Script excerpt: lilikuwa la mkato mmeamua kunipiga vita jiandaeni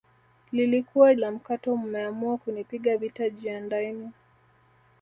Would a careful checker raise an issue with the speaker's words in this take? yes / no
no